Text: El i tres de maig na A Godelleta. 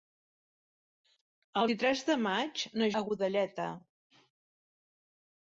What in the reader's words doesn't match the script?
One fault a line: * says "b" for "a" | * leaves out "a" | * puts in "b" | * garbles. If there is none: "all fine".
all fine